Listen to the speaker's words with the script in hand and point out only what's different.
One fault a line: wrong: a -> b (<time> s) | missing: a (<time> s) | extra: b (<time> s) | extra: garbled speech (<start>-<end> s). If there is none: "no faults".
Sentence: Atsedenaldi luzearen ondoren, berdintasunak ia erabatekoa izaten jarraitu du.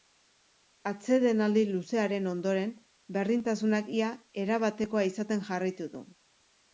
no faults